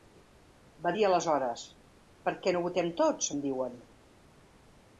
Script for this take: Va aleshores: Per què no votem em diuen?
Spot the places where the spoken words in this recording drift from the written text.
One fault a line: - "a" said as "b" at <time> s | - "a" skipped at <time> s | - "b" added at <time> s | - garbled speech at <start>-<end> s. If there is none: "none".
- "dir" added at 0.9 s
- "tots" added at 3.0 s